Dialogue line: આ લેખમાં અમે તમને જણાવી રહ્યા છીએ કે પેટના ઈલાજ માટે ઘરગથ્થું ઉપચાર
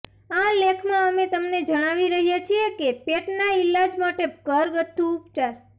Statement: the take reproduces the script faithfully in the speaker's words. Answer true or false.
true